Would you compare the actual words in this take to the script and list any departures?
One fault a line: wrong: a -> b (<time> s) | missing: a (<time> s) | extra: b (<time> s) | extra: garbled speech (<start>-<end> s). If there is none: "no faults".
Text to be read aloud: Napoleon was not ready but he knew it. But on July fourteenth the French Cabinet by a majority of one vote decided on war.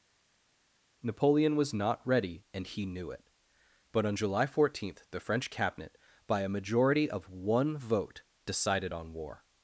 wrong: but -> and (2.5 s)